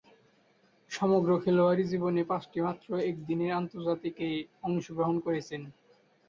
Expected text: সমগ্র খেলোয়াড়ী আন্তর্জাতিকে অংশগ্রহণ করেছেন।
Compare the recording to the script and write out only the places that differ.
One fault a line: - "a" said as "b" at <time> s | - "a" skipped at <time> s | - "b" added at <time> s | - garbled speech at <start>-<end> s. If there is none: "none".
- "জীবনে পাঁচটিমাত্র একদিনের" added at 1.9 s